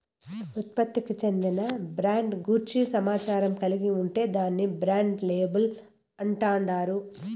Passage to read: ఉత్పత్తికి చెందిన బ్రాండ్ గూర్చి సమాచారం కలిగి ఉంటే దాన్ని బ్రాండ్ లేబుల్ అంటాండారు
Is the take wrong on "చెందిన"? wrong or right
right